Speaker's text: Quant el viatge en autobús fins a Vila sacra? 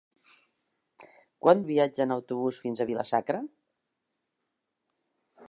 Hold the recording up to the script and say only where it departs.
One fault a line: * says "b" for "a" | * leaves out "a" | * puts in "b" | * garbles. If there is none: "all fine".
all fine